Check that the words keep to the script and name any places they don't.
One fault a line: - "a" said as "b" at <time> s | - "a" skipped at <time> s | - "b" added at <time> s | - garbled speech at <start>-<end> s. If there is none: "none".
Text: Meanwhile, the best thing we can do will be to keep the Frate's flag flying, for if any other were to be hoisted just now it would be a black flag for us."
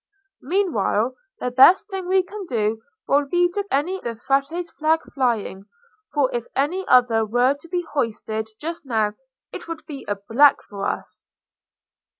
- "keep" said as "any" at 3.7 s
- "flag" skipped at 10.6 s